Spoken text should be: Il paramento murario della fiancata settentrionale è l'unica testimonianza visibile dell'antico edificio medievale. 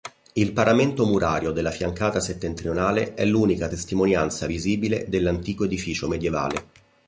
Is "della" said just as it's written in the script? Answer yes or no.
yes